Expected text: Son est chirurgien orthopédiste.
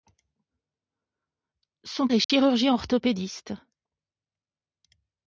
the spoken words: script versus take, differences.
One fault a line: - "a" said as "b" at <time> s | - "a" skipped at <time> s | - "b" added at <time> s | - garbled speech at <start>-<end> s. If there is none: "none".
none